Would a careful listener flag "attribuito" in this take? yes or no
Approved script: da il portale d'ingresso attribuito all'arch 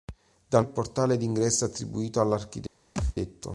no